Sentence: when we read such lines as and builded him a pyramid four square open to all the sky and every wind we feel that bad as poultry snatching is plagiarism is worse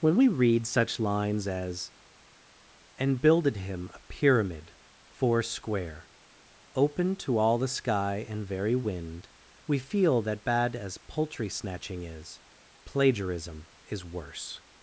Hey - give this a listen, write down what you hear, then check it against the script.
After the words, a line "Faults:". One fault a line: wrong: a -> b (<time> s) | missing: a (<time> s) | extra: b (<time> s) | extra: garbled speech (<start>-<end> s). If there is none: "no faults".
when we read such lines as and builded him a pyramid four square open to all the sky and very wind we feel that bad as poultry snatching is plagiarism is worse
Faults:
wrong: every -> very (8.5 s)